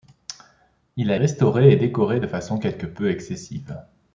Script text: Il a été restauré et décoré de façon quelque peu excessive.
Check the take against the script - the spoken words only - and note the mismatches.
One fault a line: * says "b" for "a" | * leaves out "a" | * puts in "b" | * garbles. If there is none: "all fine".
* leaves out "été"